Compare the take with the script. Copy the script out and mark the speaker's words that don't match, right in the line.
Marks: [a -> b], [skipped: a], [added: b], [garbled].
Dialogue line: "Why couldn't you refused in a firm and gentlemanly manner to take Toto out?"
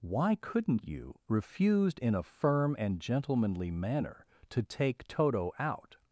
"Why couldn't you refused in a firm and gentlemanly manner to take Toto out?"